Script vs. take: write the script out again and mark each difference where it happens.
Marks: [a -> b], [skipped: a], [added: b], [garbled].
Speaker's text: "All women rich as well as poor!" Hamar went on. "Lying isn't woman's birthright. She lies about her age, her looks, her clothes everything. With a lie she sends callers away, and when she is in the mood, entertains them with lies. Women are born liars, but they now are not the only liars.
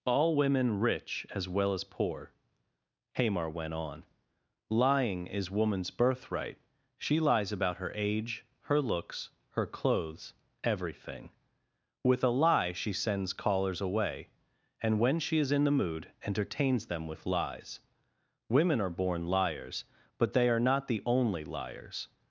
"All women rich as well as poor!" Hamar went on. "Lying [isn't -> is] woman's birthright. She lies about her age, her looks, her clothes everything. With a lie she sends callers away, and when she is in the mood, entertains them with lies. Women are born liars, but they [skipped: now] are not the only liars.